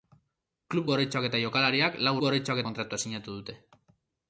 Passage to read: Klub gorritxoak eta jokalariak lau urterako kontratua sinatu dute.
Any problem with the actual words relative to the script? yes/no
yes